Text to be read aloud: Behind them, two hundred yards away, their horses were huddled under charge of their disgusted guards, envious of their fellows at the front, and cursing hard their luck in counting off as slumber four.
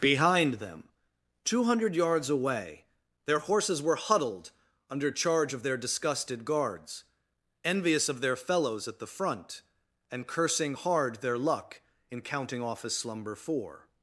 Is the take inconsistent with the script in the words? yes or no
no